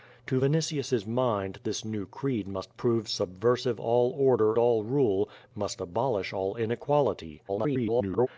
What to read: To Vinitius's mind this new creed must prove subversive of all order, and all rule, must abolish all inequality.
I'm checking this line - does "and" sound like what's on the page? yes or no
no